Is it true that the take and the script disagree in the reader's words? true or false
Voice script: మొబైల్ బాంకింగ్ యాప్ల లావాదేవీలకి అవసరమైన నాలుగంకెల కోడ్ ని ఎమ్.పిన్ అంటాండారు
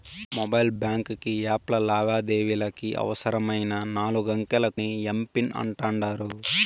true